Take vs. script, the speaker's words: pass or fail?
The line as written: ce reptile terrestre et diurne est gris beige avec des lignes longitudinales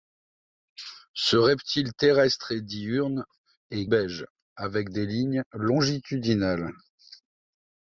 fail